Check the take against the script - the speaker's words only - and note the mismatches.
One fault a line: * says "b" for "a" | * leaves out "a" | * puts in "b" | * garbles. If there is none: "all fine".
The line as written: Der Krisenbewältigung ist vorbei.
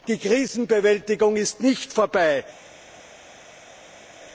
* says "Die" for "Der"
* puts in "nicht"